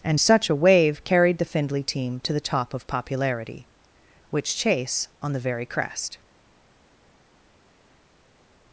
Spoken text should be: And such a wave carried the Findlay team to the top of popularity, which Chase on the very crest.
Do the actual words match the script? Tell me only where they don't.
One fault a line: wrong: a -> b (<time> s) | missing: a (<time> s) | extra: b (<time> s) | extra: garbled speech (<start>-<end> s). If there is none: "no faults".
no faults